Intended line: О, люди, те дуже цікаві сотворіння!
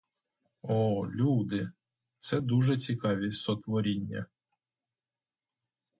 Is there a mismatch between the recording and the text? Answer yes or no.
yes